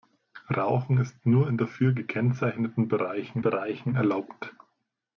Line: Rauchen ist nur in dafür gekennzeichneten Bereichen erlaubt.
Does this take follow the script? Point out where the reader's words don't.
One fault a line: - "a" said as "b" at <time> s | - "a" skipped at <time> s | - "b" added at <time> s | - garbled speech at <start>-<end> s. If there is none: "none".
- "Bereichen" added at 3.4 s